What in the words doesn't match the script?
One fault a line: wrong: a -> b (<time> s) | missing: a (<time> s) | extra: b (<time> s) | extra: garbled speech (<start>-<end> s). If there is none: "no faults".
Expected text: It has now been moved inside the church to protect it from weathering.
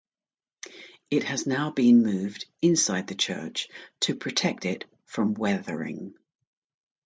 no faults